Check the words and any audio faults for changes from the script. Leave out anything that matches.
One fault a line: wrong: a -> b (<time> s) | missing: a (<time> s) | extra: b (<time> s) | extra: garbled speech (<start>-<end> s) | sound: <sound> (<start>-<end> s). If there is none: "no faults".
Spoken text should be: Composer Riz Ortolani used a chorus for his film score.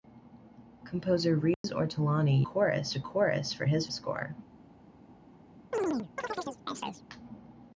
sound: dropout (1.5-1.6 s)
wrong: used -> chorus (2.4 s)
missing: film (3.9 s)
sound: chirp (5.7-7.0 s)